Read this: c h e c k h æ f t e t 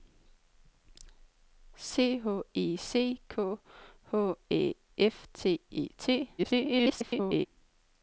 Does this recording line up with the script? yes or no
no